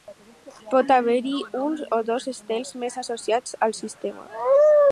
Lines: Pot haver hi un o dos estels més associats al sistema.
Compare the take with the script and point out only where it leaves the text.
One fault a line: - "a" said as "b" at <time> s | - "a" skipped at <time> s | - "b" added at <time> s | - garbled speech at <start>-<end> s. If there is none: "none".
none